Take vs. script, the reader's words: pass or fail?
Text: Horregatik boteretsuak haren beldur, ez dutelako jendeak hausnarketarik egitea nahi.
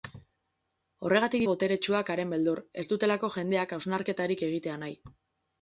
pass